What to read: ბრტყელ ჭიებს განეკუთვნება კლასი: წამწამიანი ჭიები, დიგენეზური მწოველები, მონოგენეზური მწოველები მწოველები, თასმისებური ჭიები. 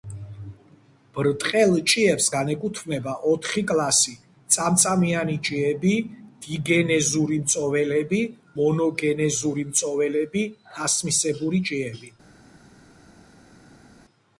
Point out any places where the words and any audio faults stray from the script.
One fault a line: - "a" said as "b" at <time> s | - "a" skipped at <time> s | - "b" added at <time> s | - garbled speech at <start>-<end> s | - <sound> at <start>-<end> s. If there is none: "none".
- "ოთხი" added at 3.3 s
- "მწოველები" skipped at 10.4 s